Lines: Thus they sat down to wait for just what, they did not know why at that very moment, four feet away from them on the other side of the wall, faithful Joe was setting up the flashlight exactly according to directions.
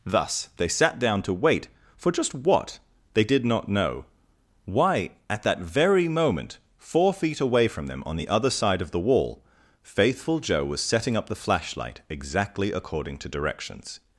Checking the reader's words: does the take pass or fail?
pass